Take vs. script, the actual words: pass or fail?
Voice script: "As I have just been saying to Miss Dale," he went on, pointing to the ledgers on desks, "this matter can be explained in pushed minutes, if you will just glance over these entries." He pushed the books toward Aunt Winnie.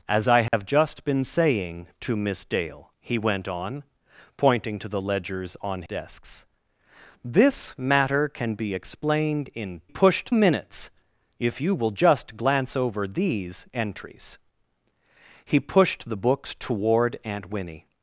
pass